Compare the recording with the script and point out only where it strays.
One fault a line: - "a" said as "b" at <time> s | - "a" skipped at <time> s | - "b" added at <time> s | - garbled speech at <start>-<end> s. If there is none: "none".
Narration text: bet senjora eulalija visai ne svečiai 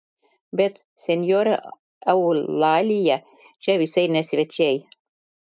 - "čia" added at 3.7 s